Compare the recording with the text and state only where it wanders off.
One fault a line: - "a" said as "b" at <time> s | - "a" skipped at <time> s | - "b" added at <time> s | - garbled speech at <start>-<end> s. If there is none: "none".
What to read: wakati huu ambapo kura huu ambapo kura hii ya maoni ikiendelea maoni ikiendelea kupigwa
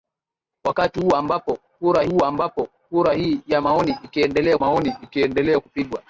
none